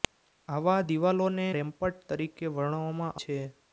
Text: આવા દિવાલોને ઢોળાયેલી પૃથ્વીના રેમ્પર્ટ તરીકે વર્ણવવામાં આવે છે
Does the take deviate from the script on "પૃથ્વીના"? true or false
true